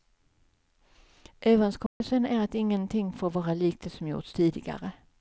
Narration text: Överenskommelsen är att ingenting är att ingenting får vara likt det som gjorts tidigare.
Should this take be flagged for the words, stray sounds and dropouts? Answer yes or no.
yes